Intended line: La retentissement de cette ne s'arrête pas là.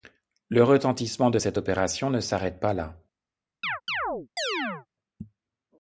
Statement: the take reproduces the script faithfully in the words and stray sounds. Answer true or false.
false